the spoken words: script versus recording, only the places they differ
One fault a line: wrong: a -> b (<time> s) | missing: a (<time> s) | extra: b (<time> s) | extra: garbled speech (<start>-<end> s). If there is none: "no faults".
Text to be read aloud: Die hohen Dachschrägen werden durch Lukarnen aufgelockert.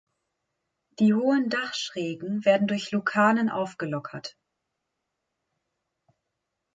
no faults